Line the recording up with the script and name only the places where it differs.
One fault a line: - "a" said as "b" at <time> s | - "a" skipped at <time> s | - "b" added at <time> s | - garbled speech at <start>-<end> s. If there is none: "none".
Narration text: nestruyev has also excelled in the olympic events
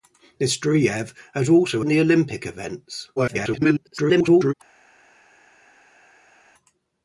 - "excelled" skipped at 1.8 s
- garbled speech at 3.2-4.5 s